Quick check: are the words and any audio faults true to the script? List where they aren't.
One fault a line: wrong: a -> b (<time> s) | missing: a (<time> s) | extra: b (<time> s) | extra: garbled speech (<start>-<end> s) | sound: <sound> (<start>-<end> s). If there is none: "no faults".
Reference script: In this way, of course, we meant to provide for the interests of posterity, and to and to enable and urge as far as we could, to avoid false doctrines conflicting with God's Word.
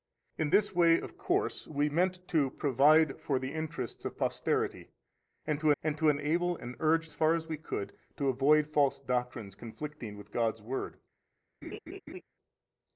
sound: laugh (11.6-12.2 s)